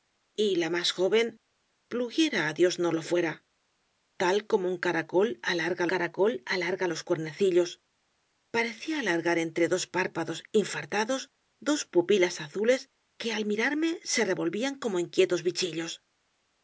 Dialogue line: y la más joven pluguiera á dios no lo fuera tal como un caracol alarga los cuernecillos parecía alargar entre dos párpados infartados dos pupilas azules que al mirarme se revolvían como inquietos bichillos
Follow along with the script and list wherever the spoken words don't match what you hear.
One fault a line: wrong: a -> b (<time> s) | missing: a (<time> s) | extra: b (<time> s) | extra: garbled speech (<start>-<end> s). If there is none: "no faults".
extra: caracol alarga (5.9 s)